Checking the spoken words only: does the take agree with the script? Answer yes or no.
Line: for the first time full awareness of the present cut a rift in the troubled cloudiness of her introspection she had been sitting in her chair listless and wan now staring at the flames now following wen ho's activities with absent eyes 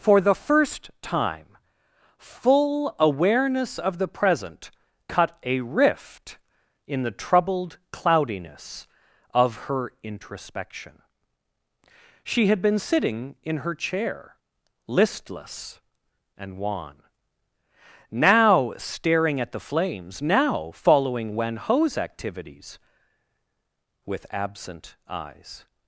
yes